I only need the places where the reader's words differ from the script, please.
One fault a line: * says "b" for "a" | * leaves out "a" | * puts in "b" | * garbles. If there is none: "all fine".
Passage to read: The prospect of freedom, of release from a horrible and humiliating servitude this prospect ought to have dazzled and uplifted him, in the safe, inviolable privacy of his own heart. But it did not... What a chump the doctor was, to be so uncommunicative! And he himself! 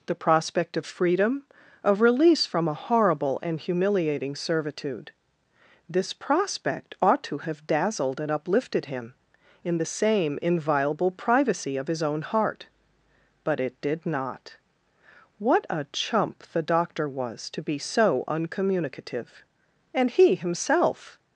* says "same" for "safe"